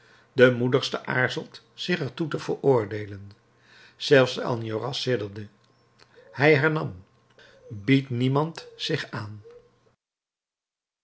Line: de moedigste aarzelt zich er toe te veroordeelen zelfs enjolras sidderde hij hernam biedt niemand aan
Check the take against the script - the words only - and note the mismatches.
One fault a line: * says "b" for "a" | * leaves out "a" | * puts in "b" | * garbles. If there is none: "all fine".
* puts in "zich"